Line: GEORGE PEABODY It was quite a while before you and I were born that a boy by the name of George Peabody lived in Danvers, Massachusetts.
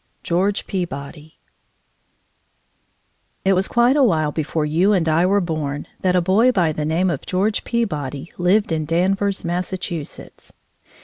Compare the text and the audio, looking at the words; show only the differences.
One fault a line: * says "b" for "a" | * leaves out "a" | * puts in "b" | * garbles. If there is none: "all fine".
all fine